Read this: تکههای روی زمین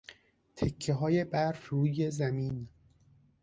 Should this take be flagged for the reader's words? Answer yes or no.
yes